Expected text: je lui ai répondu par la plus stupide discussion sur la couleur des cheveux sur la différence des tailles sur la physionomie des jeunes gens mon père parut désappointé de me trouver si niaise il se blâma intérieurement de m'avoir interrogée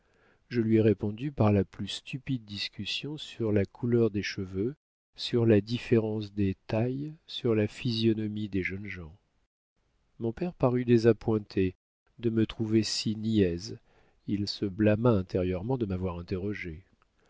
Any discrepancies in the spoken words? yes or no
no